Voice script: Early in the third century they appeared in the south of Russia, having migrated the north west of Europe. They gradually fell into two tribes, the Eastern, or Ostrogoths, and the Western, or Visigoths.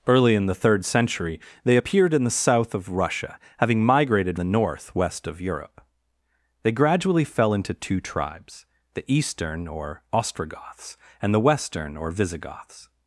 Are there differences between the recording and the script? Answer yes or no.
no